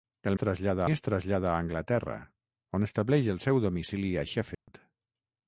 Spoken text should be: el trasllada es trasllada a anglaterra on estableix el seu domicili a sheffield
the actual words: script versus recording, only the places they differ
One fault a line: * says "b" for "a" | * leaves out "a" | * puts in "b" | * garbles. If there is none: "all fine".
all fine